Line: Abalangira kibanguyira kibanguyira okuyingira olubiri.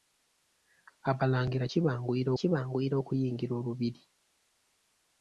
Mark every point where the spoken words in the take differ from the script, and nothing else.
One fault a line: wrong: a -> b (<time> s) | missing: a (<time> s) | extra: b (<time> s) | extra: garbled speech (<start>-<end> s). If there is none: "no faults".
no faults